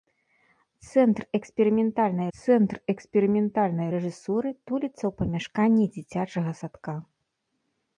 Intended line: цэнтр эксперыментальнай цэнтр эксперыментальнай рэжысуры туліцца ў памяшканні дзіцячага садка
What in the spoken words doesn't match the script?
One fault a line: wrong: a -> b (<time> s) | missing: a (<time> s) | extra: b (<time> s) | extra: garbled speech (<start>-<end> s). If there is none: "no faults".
no faults